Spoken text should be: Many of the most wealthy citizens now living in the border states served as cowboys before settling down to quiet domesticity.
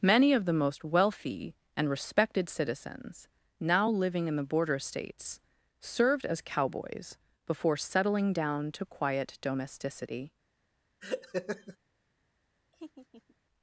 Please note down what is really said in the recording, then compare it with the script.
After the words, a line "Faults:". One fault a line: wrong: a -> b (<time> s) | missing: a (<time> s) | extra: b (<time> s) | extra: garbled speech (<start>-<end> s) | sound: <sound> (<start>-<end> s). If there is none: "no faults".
Many of the most wealthy and respected citizens now living in the border states served as cowboys before settling down to quiet domesticity.
Faults:
extra: and respected (1.8 s)
sound: laugh (11.0-11.8 s)
sound: laugh (12.7-13.4 s)